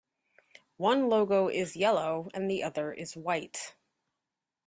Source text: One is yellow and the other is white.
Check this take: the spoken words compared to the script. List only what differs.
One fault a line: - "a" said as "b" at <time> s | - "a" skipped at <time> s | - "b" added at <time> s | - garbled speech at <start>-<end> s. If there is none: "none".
- "logo" added at 1.1 s